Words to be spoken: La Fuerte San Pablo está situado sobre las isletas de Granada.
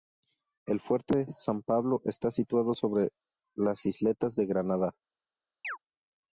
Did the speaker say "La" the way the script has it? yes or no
no